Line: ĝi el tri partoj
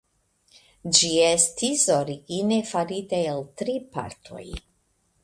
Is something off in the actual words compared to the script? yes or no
yes